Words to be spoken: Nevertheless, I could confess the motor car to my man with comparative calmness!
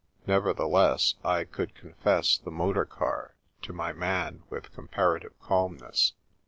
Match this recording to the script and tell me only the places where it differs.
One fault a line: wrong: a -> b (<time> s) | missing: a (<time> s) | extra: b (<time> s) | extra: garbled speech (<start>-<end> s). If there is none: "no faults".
no faults